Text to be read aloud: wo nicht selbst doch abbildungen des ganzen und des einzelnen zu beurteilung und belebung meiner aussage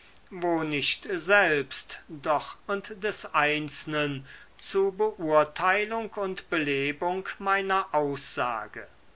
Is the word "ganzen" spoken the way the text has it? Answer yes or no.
no